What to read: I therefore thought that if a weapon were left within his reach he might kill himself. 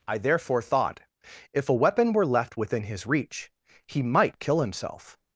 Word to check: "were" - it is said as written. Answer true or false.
true